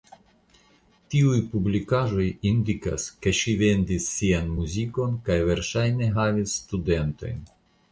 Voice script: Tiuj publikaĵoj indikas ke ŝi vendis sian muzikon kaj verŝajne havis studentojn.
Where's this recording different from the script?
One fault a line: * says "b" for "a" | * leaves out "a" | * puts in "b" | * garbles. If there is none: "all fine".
all fine